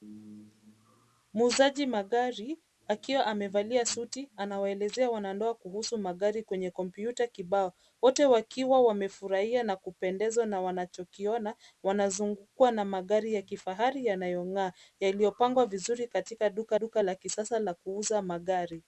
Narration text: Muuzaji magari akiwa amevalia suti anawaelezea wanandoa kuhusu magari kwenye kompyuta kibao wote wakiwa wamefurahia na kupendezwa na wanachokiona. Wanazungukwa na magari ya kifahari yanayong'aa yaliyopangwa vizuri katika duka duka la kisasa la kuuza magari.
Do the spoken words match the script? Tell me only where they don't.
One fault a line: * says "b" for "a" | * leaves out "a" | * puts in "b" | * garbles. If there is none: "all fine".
all fine